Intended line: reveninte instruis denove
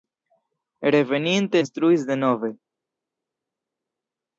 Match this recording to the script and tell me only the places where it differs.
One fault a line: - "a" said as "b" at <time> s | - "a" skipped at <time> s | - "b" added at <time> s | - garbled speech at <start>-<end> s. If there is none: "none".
none